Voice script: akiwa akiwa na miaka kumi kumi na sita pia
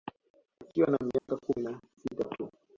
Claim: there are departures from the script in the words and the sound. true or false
true